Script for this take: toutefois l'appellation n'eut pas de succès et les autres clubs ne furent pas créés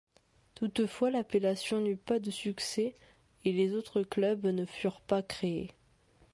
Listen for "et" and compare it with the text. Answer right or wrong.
right